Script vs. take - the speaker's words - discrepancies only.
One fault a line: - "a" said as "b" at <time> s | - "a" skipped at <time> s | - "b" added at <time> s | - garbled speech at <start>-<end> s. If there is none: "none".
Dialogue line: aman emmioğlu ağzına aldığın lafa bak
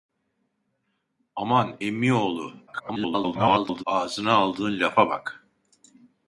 - garbled speech at 2.7-3.8 s